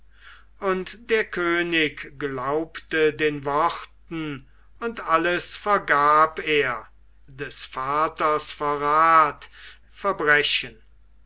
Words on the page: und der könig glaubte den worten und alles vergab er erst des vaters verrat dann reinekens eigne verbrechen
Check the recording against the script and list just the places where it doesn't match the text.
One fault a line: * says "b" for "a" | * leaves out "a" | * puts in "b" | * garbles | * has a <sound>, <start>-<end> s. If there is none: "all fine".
* leaves out "erst"
* leaves out "dann reinekens eigne"